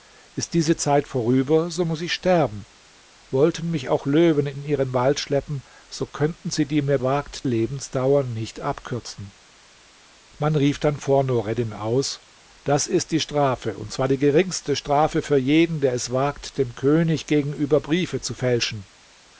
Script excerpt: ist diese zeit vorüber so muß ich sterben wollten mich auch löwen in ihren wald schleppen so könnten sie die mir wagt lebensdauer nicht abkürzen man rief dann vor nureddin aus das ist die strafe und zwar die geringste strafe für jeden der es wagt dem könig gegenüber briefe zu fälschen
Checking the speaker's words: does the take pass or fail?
pass